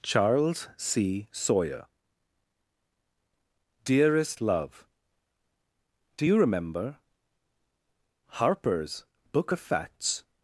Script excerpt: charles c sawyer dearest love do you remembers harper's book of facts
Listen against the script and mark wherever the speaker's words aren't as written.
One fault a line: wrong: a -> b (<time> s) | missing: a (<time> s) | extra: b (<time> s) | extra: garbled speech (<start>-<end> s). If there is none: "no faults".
wrong: remembers -> remember (6.4 s)